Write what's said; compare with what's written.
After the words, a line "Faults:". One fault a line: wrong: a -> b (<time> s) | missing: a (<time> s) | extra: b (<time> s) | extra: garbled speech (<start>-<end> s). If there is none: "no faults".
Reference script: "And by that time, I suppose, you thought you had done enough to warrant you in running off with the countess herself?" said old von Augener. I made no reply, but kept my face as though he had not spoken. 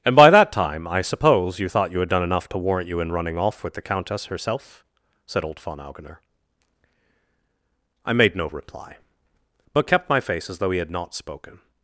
"And by that time, I suppose, you thought you had done enough to warrant you in running off with the countess herself?" said old von Augener. I made no reply, but kept my face as though he had not spoken.
Faults:
no faults